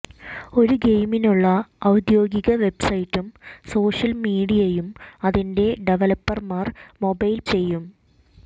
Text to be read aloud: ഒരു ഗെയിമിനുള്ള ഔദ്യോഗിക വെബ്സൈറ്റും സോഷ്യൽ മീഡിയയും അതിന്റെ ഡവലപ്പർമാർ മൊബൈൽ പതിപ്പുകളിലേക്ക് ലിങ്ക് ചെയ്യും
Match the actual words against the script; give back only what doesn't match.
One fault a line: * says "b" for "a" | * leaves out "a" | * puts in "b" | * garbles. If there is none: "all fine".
* leaves out "പതിപ്പുകളിലേക്ക് ലിങ്ക്"